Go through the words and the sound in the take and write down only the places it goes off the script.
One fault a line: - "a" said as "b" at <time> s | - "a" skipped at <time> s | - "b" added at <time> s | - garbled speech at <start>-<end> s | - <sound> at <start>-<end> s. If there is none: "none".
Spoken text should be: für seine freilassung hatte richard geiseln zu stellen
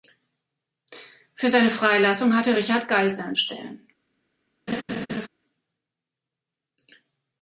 - "zu" skipped at 3.4 s
- laugh at 4.7-5.3 s